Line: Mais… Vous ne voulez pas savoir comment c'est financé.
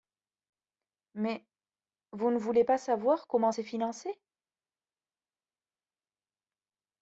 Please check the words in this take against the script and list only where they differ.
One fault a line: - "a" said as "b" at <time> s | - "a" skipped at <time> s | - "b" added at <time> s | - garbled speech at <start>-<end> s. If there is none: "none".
none